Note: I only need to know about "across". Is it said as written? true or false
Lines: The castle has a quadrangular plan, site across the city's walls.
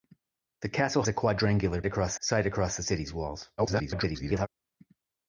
true